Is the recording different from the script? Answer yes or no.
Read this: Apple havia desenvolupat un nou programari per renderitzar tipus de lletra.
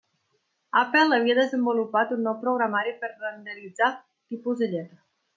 no